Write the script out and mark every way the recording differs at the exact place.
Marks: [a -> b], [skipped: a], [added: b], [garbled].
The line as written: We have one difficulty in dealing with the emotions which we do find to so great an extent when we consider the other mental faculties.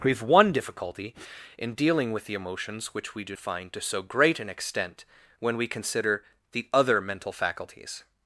We have one difficulty in dealing with the emotions which we do find to so great an extent when we consider the other mental faculties.